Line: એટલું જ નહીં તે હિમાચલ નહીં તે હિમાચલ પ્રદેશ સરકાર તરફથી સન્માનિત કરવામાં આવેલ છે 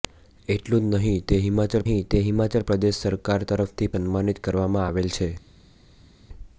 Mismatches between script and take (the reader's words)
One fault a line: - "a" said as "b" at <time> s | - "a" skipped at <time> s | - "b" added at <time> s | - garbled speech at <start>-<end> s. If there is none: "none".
none